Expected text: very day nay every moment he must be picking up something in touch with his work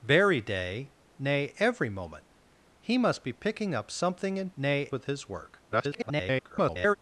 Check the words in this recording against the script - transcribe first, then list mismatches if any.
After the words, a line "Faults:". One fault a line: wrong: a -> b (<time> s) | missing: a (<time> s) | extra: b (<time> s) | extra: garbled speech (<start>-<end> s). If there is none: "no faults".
very day nay every moment he must be picking up something in nay with his work [garbled]
Faults:
wrong: touch -> nay (4.6 s)
extra: garbled speech (5.7-7.0 s)